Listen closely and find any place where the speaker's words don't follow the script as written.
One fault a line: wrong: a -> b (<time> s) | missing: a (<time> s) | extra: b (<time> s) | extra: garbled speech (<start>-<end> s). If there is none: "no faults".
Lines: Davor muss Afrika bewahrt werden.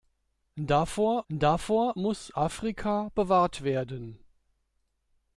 extra: davor (1.3 s)